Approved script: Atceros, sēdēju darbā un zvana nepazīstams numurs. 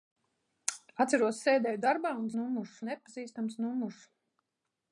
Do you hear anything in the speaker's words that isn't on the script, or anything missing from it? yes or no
yes